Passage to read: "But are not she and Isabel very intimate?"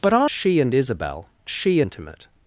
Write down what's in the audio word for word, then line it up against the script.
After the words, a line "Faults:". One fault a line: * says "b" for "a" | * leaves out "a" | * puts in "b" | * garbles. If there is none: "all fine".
"But are she and Isabel she intimate?"
Faults:
* leaves out "not"
* says "she" for "very"